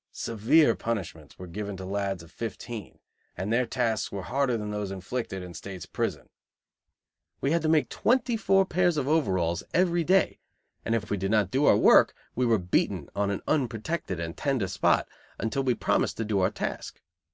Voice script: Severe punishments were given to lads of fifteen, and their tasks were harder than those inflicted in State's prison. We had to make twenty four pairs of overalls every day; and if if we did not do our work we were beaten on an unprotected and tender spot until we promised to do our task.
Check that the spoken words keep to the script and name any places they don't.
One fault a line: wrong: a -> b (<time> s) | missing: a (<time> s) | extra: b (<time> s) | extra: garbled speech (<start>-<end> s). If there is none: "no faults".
no faults